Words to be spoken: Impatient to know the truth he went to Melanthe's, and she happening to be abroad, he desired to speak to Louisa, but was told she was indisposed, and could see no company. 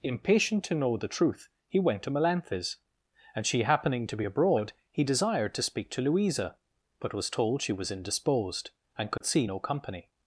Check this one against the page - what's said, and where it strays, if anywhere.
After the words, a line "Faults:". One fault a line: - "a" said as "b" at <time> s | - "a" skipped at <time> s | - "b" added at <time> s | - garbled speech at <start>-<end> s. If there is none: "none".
Impatient to know the truth he went to Melanthe's, and she happening to be abroad, he desired to speak to Louisa, but was told she was indisposed, and could see no company.
Faults:
none